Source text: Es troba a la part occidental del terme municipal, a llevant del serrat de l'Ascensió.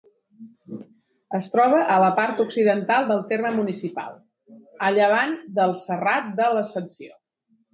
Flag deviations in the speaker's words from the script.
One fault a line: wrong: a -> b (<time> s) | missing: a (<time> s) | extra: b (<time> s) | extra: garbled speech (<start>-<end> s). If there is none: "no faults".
no faults